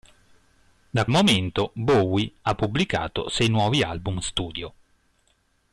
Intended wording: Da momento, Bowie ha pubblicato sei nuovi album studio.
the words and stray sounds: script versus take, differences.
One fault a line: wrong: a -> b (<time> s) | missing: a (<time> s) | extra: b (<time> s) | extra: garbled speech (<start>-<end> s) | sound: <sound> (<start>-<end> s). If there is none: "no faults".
no faults